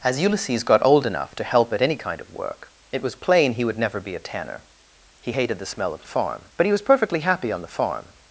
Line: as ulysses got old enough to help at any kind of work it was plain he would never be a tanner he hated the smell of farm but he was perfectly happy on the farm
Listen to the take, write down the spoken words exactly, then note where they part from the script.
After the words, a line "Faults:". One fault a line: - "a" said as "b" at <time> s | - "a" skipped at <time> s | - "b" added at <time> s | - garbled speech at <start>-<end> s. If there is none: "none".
as ulysses got old enough to help at any kind of work it was plain he would never be a tanner he hated the smell of farm but he was perfectly happy on the farm
Faults:
none